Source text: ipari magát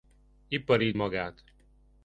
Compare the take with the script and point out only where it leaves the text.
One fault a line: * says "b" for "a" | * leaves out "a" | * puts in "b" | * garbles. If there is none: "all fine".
all fine